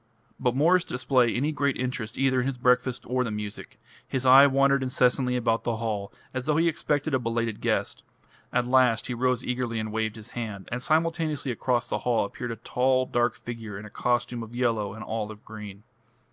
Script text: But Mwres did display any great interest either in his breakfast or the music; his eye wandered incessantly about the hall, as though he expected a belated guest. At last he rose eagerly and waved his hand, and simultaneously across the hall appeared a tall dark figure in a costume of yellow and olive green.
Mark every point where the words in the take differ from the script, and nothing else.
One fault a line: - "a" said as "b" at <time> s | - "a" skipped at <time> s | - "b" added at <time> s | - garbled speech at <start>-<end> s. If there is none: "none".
none